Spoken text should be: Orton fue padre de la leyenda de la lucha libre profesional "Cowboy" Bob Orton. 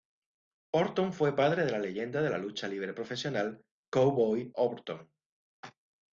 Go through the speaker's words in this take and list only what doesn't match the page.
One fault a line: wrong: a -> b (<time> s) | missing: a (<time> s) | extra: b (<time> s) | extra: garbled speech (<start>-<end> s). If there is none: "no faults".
missing: Bob (4.5 s)